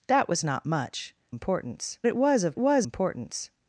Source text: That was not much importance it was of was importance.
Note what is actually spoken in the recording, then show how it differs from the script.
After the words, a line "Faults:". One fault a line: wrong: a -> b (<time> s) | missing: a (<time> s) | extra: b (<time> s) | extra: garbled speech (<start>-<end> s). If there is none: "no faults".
That was not much importance it was of was importance.
Faults:
no faults